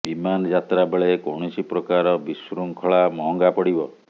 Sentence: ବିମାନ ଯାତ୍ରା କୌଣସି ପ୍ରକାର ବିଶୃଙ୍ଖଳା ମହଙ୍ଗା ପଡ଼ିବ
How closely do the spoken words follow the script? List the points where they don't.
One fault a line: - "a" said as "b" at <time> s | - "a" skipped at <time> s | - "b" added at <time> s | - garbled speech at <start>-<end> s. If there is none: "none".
- "ବେଳେ" added at 0.9 s